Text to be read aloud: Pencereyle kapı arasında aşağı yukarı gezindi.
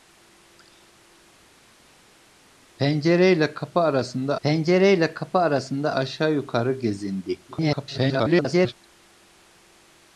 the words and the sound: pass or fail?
fail